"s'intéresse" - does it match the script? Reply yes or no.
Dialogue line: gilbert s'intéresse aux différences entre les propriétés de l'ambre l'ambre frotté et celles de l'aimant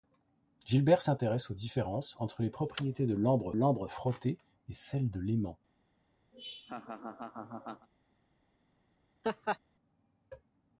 yes